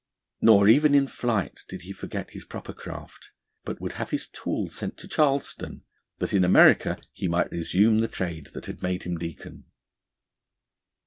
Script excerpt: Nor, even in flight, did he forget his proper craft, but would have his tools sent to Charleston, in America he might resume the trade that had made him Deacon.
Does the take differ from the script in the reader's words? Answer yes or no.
yes